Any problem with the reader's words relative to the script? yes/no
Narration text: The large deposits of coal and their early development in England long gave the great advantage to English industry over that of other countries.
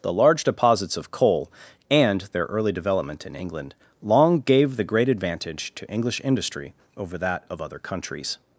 no